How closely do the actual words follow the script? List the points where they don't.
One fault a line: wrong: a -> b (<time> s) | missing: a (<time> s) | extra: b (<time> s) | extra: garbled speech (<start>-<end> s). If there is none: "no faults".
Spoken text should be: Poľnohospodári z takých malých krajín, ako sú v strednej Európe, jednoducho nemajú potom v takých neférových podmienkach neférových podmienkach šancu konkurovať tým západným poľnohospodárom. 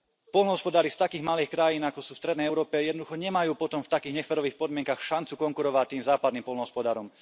missing: neférových podmienkach (5.0 s)